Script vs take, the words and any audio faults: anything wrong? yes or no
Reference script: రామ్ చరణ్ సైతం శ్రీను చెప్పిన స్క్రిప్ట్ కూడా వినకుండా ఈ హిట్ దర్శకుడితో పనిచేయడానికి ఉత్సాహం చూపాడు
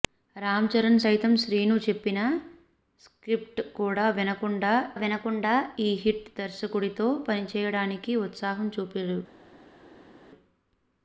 yes